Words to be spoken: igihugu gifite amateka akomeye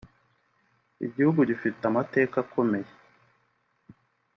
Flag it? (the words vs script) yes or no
no